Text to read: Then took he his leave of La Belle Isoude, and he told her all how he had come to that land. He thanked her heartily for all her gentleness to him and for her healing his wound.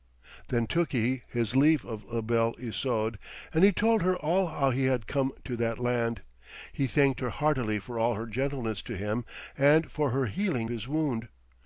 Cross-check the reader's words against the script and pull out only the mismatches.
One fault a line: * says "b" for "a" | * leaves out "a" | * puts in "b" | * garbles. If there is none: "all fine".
all fine